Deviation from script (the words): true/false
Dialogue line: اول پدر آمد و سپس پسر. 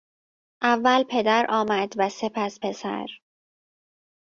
false